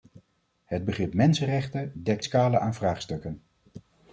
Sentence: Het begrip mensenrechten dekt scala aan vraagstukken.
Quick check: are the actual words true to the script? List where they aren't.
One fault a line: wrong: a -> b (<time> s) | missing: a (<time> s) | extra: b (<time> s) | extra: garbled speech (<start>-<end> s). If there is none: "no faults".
no faults